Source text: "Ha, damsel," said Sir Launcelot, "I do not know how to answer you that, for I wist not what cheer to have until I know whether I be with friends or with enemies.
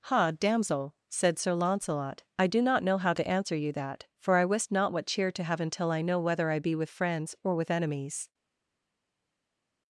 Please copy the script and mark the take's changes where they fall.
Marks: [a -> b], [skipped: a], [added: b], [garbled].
"Ha, damsel," said Sir Launcelot, "I do not know how to answer you that, for I wist not what cheer to have until I know whether I be with friends or with enemies.